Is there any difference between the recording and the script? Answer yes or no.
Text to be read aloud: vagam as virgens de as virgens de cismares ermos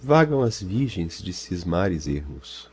yes